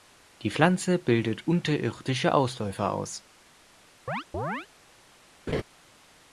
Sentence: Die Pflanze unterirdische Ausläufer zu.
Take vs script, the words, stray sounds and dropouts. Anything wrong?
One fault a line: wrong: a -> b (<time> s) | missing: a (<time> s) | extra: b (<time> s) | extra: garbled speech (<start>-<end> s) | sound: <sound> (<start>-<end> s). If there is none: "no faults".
extra: bildet (1.0 s)
wrong: zu -> aus (2.9 s)
sound: chirp (4.1-4.7 s)
sound: laugh (5.5-5.6 s)